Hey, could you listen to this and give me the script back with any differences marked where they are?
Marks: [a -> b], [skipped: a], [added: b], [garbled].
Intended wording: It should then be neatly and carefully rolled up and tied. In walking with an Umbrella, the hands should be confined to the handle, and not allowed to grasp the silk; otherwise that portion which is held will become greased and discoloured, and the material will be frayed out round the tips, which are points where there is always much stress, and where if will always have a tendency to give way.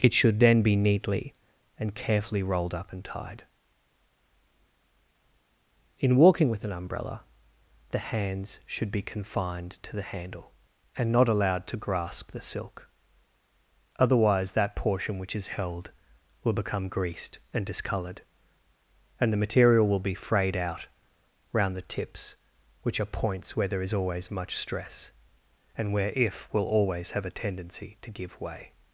It should then be neatly and carefully rolled up and tied. In walking with an Umbrella, the hands should be confined to the handle, and not allowed to grasp the silk; otherwise that portion which is held will become greased and discoloured, and the material will be frayed out round the tips, which are points where there is always much stress, and where if will always have a tendency to give way.